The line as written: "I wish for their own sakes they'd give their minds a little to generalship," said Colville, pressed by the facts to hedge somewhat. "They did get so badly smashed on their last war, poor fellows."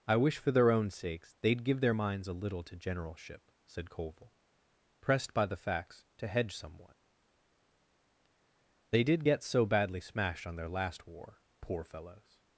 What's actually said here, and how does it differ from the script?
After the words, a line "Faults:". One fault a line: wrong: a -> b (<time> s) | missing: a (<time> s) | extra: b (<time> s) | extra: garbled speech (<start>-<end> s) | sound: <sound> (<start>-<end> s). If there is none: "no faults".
"I wish for their own sakes they'd give their minds a little to generalship," said Colville, pressed by the facts to hedge somewhat. "They did get so badly smashed on their last war, poor fellows."
Faults:
no faults